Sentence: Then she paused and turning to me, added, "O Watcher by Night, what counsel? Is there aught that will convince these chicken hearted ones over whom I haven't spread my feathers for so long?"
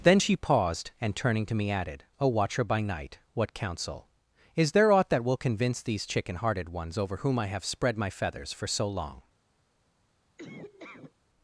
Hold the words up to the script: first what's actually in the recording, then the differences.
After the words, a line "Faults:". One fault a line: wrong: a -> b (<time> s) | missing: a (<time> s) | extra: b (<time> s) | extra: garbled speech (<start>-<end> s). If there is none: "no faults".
Then she paused and turning to me, added, "O Watcher by Night, what counsel? Is there aught that will convince these chicken hearted ones over whom I have spread my feathers for so long?"
Faults:
wrong: haven't -> have (7.5 s)